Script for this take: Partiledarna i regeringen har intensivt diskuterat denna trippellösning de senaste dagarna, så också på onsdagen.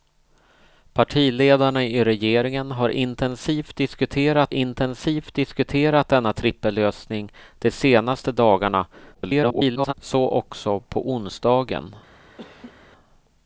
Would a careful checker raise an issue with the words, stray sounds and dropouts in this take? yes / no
yes